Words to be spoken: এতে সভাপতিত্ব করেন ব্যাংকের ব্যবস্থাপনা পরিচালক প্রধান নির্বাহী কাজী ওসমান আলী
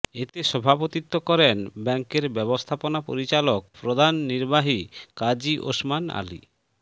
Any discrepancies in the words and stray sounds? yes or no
no